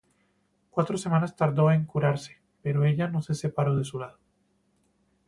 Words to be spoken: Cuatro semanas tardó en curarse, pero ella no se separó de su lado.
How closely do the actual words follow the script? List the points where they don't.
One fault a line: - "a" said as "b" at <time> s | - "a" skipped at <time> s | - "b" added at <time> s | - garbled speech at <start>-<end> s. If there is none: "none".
none